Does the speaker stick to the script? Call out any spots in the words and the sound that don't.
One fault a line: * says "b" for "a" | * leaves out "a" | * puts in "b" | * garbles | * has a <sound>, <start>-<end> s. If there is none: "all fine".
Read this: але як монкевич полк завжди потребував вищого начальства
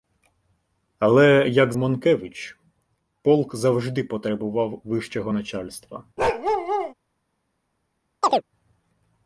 * has a bark, 6.2-6.9 s
* has a chirp, 8.2-8.4 s